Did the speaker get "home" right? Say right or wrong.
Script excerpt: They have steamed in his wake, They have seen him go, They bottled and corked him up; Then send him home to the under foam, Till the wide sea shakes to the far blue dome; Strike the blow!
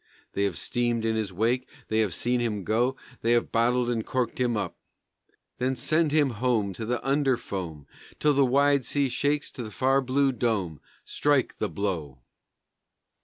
right